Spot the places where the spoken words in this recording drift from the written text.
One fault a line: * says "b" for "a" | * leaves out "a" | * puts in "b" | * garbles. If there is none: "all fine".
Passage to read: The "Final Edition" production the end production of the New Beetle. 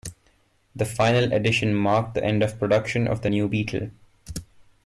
* says "marked" for "production"
* puts in "of"